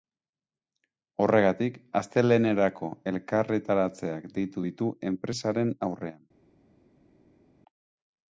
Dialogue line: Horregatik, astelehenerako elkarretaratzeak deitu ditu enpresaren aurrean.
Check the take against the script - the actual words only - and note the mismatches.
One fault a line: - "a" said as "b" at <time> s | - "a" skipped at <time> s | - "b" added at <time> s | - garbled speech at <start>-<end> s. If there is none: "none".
none